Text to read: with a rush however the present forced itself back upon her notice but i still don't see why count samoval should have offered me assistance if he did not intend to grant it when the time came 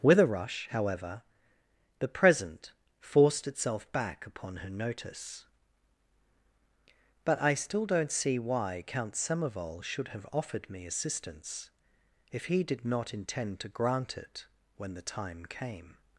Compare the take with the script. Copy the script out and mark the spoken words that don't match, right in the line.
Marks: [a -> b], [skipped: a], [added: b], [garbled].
with a rush however the present forced itself back upon her notice but i still don't see why count samoval should have offered me assistance if he did not intend to grant it when the time came